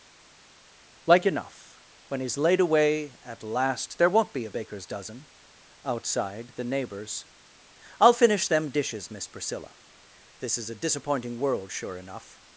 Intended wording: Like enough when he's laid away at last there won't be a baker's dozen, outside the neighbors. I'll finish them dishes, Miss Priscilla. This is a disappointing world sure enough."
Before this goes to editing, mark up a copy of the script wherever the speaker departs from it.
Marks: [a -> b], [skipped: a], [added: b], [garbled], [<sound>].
Like enough when he's laid away at last there won't be a baker's dozen, outside the neighbors. I'll finish them dishes, Miss Priscilla. This is a disappointing world sure enough."